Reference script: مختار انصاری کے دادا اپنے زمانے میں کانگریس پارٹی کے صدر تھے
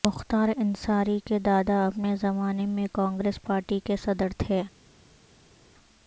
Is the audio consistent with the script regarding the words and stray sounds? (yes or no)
yes